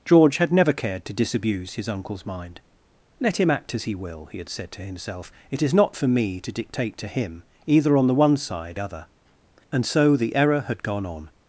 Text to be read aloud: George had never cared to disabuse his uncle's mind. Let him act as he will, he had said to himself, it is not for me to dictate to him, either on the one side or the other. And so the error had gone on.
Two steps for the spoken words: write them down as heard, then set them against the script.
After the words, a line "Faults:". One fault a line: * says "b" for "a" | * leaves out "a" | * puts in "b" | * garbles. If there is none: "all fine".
George had never cared to disabuse his uncle's mind. Let him act as he will, he had said to himself, it is not for me to dictate to him, either on the one side other. And so the error had gone on.
Faults:
* leaves out "or the"